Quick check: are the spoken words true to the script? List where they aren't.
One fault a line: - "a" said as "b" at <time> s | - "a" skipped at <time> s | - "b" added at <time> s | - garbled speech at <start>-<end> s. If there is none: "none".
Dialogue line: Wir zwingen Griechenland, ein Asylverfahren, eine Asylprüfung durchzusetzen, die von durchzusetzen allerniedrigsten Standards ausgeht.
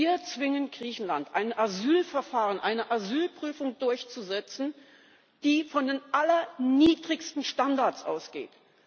- "durchzusetzen" said as "den" at 5.8 s